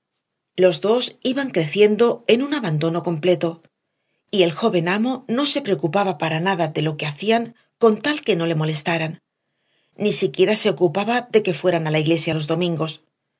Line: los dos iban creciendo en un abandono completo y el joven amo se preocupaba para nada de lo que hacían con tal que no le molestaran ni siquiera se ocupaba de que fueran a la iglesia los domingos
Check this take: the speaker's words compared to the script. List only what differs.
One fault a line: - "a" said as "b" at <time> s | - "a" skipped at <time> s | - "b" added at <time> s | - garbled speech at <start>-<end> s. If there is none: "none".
- "no" added at 5.3 s